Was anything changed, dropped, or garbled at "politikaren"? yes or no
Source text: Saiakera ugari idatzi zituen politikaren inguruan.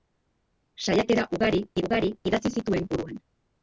yes